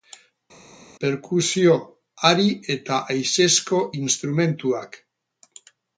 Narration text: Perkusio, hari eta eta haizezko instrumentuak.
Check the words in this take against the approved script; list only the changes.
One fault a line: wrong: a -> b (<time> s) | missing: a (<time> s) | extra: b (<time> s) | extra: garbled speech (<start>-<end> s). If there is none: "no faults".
missing: eta (3.0 s)